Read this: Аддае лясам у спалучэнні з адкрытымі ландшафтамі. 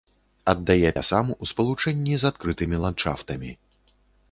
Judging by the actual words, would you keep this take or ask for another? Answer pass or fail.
pass